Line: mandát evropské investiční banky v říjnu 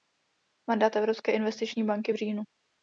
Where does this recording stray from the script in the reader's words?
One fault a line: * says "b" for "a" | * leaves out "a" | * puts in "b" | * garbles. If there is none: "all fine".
all fine